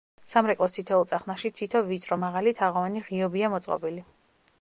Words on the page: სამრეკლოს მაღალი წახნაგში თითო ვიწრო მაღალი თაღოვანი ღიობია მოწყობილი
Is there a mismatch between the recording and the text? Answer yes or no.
yes